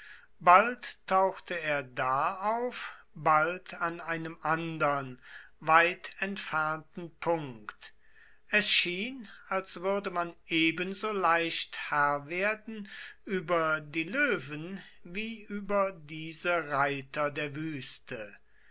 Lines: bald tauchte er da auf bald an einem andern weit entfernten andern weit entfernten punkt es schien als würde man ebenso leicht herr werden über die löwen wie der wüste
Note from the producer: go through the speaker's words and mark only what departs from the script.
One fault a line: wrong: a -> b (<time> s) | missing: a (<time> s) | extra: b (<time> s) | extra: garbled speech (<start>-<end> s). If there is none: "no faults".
missing: andern weit entfernten (7.2 s)
extra: über diese reiter (15.5 s)